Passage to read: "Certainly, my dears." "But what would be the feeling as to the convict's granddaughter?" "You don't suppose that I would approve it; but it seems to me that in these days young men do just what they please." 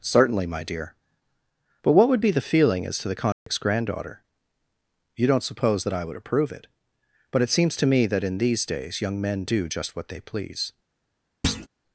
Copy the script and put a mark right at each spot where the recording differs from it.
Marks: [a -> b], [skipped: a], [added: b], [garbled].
"Certainly, my [dears." -> dear] "But what would be the feeling as to the convict's granddaughter?" "You don't suppose that I would approve it; but it seems to me that in these days young men do just what they please."